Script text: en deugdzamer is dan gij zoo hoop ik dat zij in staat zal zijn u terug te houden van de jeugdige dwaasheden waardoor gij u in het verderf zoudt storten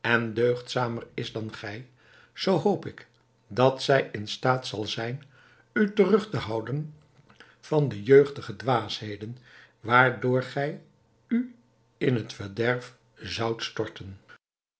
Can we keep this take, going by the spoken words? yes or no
yes